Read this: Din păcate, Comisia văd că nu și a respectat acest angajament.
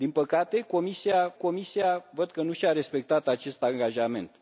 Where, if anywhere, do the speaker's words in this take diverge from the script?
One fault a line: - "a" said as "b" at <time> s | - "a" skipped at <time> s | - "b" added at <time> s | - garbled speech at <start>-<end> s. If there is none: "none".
- "Comisia" added at 1.3 s